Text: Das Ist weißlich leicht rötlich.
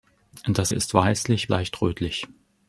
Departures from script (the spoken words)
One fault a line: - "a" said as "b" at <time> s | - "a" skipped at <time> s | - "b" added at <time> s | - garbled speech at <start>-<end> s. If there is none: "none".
none